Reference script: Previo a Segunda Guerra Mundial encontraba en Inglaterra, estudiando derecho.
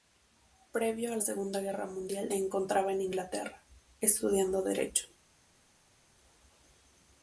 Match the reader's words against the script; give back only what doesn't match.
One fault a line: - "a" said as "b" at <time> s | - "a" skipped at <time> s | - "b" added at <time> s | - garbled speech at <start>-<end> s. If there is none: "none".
none